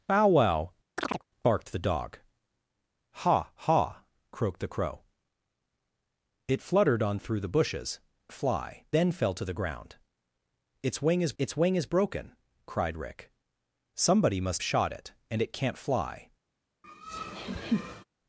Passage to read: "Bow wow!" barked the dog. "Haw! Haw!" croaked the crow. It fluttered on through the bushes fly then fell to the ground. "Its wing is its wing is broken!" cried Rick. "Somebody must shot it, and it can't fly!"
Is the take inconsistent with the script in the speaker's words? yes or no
no